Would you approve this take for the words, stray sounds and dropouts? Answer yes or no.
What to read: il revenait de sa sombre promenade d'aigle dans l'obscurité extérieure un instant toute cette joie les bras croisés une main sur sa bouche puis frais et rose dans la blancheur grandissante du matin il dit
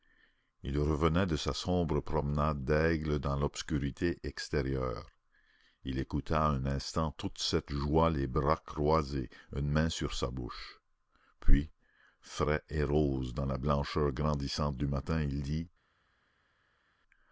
no